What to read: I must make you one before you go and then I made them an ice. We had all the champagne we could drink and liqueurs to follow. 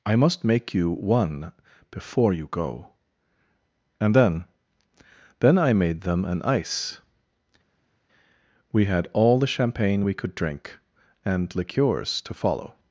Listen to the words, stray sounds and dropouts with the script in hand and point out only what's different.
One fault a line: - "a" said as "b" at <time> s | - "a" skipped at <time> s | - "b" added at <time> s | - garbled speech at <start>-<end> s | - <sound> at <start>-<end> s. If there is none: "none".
- "then" added at 5.4 s